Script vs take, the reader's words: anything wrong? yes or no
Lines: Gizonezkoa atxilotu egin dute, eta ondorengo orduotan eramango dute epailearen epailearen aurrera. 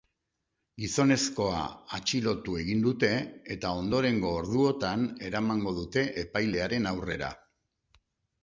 yes